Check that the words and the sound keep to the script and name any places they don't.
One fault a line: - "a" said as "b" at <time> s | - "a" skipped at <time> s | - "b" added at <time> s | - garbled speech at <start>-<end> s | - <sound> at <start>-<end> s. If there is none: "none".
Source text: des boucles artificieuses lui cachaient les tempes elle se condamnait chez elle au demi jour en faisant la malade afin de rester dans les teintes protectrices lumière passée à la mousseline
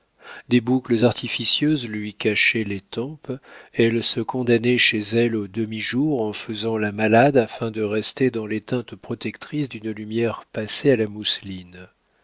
- "d'une" added at 9.7 s